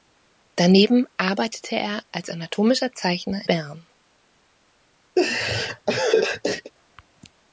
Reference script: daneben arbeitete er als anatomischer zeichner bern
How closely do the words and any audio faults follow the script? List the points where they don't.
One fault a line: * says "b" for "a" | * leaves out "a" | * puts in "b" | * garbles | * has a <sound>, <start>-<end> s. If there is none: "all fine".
* has a laugh, 5.2-6.7 s